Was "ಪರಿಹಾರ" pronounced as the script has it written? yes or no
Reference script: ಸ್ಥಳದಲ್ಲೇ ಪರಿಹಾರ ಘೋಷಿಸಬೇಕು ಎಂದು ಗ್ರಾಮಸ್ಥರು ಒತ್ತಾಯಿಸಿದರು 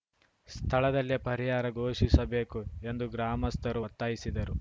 yes